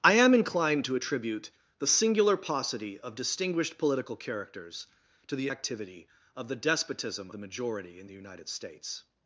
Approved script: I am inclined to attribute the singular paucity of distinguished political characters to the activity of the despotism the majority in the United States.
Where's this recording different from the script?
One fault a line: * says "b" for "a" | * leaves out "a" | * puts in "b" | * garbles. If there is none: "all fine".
all fine